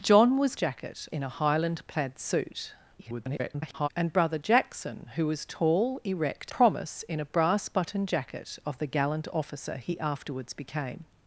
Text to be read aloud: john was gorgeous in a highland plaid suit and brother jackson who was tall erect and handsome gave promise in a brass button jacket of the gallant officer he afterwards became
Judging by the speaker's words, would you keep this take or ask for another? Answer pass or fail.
fail